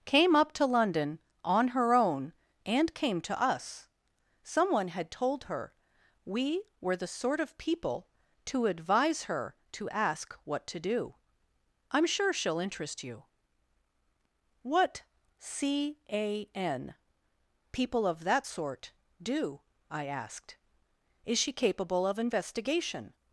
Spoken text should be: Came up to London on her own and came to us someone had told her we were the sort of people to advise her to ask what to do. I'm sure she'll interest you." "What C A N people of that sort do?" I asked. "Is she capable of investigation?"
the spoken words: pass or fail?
pass